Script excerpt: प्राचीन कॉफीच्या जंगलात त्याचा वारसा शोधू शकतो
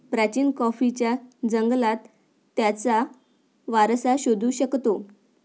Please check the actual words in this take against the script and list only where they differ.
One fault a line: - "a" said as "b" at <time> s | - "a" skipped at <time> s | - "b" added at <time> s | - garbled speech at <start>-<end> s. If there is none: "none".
none